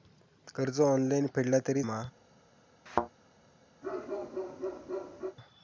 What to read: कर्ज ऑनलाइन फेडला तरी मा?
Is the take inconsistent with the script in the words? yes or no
no